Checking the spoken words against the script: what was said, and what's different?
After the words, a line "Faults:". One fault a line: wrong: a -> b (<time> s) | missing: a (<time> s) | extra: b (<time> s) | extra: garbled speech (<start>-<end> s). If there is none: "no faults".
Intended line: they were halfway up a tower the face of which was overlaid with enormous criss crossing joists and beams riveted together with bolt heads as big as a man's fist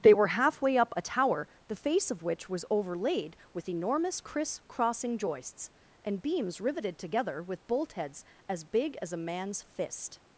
they were halfway up a tower the face of which was overlaid with enormous criss crossing joists and beams riveted together with bolt heads as big as a man's fist
Faults:
no faults